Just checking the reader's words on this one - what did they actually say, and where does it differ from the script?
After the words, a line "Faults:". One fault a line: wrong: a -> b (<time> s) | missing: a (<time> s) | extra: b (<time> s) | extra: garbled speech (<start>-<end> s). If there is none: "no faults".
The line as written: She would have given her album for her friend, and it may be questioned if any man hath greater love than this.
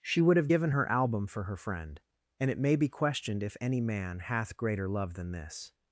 She would have given her album for her friend, and it may be questioned if any man hath greater love than this.
Faults:
no faults